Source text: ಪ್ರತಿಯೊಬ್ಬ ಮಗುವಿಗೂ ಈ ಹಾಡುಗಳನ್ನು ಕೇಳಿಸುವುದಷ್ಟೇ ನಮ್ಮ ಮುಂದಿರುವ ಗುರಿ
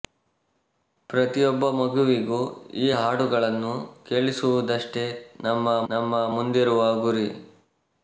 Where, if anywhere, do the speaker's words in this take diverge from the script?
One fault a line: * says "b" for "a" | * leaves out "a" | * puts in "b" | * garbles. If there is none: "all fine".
* puts in "ನಮ್ಮ"